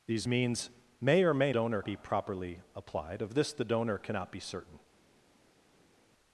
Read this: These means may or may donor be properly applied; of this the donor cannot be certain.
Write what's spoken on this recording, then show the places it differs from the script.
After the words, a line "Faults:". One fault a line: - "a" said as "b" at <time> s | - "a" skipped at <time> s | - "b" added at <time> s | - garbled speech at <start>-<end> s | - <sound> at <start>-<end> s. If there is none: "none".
These means may or may donor be properly applied; of this the donor cannot be certain.
Faults:
none